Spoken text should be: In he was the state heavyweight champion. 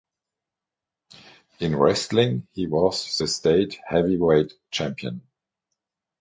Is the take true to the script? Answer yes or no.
no